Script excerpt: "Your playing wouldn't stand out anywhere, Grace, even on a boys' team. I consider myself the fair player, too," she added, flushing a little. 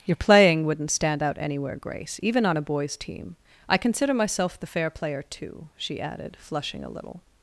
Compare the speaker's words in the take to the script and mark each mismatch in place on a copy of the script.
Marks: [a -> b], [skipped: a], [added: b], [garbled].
"Your playing wouldn't stand out anywhere, Grace, even on a boys' team. I consider myself the fair player, too," she added, flushing a little.